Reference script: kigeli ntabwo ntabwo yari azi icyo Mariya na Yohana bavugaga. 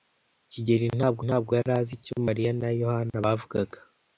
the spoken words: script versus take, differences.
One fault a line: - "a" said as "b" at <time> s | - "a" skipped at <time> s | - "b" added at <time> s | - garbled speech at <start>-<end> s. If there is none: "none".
none